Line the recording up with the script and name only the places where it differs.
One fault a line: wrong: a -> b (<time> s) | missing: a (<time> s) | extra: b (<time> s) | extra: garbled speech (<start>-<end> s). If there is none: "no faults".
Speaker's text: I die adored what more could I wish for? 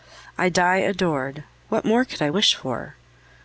no faults